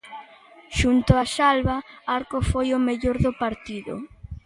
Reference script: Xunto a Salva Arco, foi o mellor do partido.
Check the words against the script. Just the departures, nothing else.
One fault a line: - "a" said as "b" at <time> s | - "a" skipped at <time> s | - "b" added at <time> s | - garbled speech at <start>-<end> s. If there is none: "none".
none